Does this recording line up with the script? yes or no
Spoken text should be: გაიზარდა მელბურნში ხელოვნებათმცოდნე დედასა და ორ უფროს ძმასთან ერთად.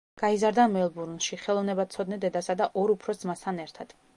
yes